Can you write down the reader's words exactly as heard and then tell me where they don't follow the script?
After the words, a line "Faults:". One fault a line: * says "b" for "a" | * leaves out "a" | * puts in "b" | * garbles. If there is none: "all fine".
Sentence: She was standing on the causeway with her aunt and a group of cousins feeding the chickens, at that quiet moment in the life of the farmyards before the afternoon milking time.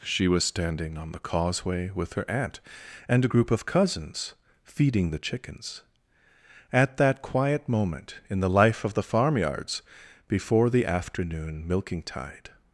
She was standing on the causeway with her aunt and a group of cousins feeding the chickens, at that quiet moment in the life of the farmyards before the afternoon milking tide.
Faults:
* says "tide" for "time"